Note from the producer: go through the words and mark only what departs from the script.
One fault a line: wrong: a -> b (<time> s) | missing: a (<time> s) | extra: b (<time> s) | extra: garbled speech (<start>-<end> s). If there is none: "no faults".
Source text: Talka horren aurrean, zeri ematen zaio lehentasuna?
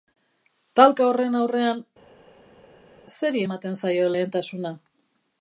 no faults